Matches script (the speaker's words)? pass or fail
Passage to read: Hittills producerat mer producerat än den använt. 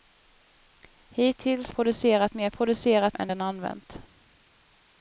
pass